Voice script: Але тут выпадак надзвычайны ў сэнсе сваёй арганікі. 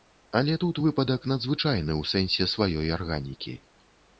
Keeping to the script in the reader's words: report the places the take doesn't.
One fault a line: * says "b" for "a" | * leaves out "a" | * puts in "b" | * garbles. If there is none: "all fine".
all fine